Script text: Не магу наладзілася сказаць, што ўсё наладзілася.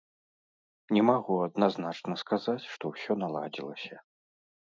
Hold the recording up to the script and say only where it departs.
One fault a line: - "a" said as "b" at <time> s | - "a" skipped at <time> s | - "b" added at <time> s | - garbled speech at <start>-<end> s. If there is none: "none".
- "наладзілася" said as "адназначна" at 1.5 s